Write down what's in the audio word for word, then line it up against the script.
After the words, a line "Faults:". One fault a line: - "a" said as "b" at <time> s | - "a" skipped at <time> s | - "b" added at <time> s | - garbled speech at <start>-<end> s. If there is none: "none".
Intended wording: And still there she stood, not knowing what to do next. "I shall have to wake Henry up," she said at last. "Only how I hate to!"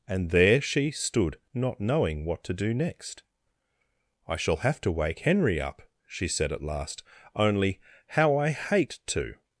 And there she stood, not knowing what to do next. "I shall have to wake Henry up," she said at last. "Only how I hate to!"
Faults:
- "still" skipped at 0.3 s